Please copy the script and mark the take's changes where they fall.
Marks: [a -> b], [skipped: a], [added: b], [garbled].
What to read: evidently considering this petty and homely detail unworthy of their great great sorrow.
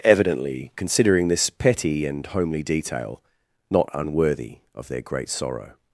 evidently considering this petty and homely detail [added: not] unworthy of their great [skipped: great] sorrow.